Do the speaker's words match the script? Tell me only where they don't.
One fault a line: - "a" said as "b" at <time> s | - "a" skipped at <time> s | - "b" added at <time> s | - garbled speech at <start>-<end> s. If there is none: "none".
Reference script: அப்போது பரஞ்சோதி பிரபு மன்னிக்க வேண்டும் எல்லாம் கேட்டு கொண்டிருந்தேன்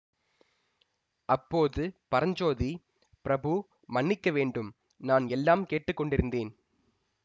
- "நான்" added at 5.0 s